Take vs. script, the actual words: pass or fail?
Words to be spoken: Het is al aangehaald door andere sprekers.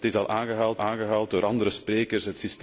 fail